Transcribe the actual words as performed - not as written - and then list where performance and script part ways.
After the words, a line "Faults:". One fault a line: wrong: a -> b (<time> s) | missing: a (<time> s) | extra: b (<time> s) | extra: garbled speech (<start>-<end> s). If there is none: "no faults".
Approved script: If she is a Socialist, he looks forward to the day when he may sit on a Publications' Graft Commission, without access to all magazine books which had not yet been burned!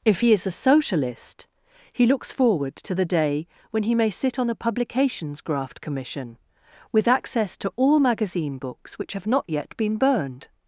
If he is a Socialist, he looks forward to the day when he may sit on a Publications' Graft Commission, with access to all magazine books which have not yet been burned!
Faults:
wrong: she -> he (0.2 s)
wrong: without -> with (6.9 s)
wrong: had -> have (9.1 s)